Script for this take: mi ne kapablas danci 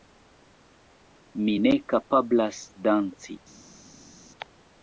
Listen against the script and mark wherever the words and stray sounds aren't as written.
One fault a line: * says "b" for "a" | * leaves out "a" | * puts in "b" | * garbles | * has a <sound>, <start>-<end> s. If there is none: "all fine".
all fine